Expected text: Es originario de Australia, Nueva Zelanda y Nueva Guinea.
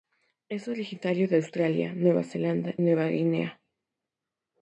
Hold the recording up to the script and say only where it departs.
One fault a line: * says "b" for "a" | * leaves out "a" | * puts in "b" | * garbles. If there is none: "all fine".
* leaves out "y"